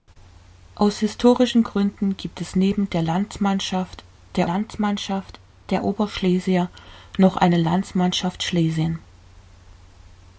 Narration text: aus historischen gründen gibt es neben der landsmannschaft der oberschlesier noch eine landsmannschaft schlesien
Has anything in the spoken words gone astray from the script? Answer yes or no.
yes